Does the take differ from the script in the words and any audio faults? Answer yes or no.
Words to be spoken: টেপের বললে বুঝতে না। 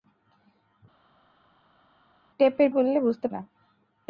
no